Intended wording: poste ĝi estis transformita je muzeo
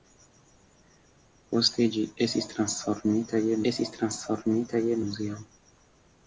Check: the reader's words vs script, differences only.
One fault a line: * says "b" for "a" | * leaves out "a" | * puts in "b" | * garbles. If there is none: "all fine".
* puts in "estis transformita je"